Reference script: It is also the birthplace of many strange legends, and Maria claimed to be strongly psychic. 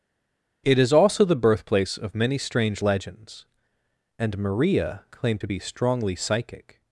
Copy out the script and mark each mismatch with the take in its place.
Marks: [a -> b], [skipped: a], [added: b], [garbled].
It is also the birthplace of many strange legends, and Maria claimed to be strongly psychic.